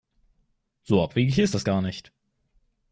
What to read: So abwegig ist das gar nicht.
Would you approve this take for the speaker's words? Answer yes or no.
yes